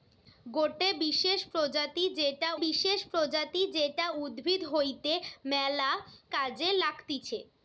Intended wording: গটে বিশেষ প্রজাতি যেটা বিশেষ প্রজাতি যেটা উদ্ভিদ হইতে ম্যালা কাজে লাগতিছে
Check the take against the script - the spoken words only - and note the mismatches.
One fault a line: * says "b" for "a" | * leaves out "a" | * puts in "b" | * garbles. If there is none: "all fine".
all fine